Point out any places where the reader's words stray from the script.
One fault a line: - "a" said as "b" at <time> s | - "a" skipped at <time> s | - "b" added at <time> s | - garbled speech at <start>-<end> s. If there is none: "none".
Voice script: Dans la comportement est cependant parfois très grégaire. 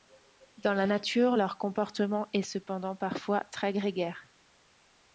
- "nature leur" added at 0.8 s